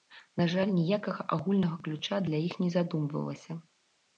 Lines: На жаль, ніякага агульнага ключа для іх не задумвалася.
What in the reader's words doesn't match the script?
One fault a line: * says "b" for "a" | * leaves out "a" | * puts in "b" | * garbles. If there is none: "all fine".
all fine